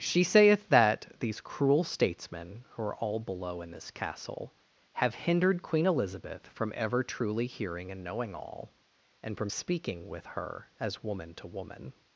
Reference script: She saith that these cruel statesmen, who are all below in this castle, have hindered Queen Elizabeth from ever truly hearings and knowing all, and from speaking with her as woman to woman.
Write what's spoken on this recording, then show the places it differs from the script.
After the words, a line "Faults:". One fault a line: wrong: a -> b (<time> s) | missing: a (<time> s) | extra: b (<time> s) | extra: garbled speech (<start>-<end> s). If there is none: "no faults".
She saith that these cruel statesmen, who are all below in this castle, have hindered Queen Elizabeth from ever truly hearing and knowing all, and from speaking with her as woman to woman.
Faults:
wrong: hearings -> hearing (7.5 s)